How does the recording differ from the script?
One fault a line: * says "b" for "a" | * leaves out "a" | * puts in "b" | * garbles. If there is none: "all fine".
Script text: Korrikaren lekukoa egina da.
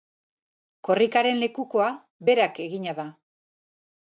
* puts in "berak"